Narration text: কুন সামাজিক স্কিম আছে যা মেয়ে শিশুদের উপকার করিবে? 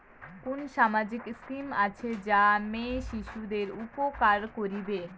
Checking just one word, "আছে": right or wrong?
right